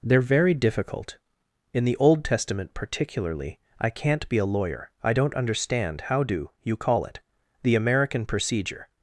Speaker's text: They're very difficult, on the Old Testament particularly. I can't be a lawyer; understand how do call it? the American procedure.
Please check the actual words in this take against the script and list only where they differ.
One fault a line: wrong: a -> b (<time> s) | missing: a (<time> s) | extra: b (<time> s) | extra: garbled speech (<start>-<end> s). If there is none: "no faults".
wrong: on -> in (1.7 s)
extra: I don't (5.0 s)
extra: you (6.6 s)